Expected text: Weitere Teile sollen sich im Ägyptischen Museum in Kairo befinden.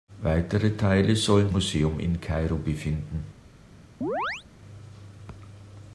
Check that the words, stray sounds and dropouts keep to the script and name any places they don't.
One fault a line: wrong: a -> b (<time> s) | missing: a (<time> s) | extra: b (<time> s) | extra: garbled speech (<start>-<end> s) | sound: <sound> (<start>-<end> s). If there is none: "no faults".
missing: sich im Ägyptischen (1.5 s)
sound: chirp (4.0-4.4 s)